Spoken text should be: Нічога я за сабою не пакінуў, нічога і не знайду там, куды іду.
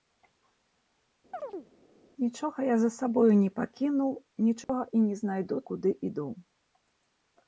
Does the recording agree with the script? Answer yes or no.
no